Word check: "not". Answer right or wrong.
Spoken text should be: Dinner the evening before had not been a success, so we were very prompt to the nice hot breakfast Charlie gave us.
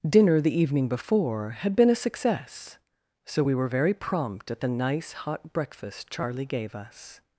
wrong